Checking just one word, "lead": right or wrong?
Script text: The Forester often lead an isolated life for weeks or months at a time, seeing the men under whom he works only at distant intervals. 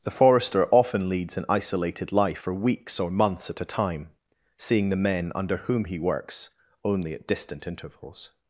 wrong